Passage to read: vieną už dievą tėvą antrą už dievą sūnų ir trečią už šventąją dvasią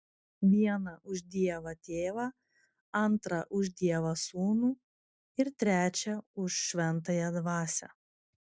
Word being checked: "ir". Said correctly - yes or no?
yes